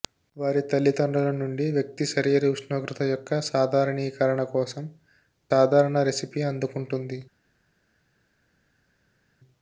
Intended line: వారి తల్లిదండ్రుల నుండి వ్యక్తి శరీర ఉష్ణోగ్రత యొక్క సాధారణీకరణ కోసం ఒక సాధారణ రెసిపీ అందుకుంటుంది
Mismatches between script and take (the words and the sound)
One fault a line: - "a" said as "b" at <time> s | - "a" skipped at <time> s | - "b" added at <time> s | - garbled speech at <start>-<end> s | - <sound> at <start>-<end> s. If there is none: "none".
- "ఒక" skipped at 4.8 s